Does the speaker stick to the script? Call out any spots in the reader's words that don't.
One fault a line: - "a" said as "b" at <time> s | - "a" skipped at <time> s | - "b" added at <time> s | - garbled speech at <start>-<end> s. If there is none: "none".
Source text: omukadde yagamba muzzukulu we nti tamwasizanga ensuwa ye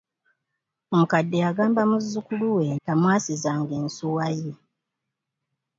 - "nti" skipped at 2.6 s